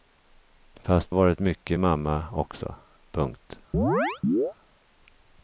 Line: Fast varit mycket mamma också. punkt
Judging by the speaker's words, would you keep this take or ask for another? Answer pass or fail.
pass